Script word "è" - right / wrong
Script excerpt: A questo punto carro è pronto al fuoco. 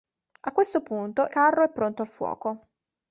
right